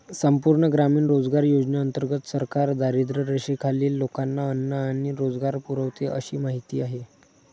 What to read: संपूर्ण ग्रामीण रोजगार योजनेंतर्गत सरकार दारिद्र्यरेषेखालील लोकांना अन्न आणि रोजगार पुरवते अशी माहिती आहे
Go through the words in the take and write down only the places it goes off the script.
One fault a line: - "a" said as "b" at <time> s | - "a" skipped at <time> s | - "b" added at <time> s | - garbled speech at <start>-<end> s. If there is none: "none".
none